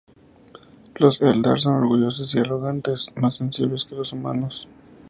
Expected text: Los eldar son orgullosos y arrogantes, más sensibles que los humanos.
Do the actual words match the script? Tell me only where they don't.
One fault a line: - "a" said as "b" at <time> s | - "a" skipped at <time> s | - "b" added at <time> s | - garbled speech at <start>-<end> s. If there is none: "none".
none